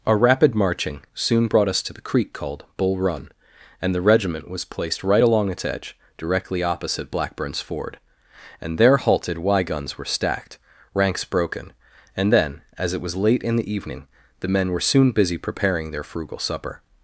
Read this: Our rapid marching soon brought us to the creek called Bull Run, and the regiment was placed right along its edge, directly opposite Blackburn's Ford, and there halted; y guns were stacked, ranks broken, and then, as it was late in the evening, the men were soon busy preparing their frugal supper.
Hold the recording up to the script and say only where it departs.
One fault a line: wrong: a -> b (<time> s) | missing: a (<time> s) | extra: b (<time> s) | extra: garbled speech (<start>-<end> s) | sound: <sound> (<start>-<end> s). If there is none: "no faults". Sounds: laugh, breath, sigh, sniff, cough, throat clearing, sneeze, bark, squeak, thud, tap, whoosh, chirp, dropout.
no faults